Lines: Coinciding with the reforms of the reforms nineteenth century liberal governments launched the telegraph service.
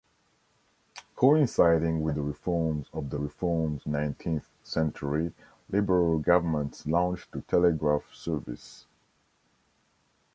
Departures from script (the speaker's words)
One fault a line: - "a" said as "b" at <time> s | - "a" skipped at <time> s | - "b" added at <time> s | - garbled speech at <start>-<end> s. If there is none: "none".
none